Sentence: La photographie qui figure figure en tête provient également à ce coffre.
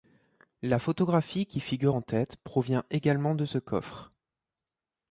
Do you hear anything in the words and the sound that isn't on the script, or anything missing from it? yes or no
yes